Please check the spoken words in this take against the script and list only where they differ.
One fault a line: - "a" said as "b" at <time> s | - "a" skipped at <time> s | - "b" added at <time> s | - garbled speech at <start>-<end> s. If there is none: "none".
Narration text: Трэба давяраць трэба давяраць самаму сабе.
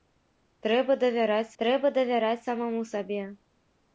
none